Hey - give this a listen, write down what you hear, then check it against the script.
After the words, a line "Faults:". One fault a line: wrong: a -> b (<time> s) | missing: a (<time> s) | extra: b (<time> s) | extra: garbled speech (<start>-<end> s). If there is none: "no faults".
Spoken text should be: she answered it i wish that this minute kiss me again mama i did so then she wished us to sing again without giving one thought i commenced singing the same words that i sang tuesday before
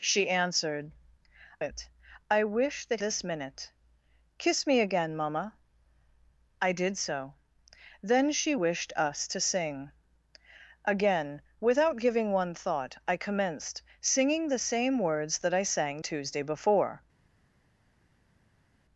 she answered it i wish that this minute kiss me again mama i did so then she wished us to sing again without giving one thought i commenced singing the same words that i sang tuesday before
Faults:
no faults